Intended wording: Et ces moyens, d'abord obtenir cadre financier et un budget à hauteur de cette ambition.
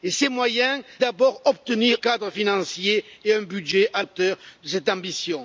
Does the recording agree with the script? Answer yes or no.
yes